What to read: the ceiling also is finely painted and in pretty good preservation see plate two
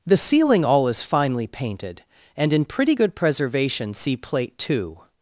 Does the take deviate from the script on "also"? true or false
true